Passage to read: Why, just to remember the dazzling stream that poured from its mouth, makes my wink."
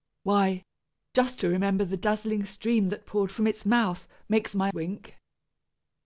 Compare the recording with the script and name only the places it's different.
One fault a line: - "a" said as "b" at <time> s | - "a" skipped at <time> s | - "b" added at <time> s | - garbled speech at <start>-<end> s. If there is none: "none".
none